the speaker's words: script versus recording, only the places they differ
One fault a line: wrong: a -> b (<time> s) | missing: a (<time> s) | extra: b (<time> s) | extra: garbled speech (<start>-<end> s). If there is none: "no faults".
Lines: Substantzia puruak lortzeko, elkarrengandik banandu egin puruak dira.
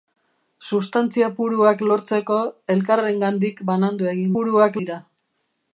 no faults